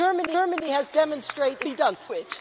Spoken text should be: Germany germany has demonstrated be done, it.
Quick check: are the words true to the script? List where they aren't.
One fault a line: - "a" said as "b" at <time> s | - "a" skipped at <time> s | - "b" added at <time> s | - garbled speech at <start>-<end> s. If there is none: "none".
none